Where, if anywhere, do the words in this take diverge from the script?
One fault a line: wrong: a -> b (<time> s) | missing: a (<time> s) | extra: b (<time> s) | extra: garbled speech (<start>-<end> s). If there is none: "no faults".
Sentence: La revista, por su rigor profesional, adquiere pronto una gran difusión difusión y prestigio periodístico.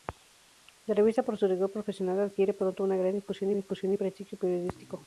no faults